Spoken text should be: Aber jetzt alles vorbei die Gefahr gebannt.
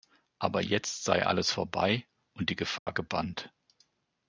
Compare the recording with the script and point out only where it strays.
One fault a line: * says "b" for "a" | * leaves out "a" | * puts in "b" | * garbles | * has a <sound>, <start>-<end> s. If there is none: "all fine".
* puts in "sei"
* puts in "und"
* has a dropout, 2.8-2.9 s